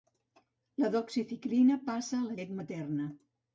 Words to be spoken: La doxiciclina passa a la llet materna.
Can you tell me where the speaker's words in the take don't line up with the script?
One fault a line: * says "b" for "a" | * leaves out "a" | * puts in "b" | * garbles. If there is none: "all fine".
all fine